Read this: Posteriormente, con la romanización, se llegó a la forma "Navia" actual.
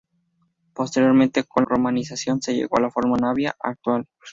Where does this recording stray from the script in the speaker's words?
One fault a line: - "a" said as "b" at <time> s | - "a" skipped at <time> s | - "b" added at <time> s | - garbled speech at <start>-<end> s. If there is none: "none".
- "la" skipped at 1.6 s